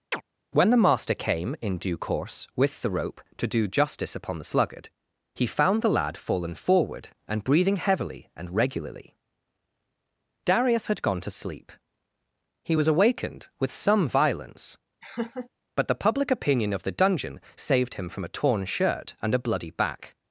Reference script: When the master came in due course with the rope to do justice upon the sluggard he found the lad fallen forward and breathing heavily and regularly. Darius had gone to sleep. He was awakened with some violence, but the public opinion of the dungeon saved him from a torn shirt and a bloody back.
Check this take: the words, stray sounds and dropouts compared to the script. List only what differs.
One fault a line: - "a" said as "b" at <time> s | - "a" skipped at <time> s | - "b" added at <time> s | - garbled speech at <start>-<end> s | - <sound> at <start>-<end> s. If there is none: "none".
- chirp at 0.1-0.2 s
- laugh at 15.0-15.5 s